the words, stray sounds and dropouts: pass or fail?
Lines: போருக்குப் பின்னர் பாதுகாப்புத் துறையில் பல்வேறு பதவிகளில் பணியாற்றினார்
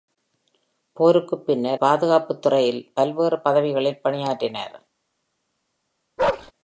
fail